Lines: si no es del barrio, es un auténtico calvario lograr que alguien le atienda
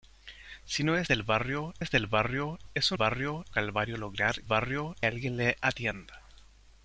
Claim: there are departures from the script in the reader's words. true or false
true